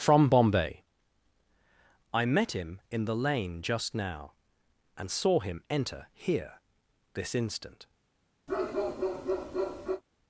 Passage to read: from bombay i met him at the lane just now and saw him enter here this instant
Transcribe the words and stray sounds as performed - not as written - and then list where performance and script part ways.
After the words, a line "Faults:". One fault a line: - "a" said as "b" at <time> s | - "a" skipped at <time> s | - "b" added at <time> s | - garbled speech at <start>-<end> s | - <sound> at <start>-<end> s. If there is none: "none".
from bombay i met him in the lane just now and saw him enter here this instant
Faults:
- "at" said as "in" at 2.9 s
- bark at 8.5-10.0 s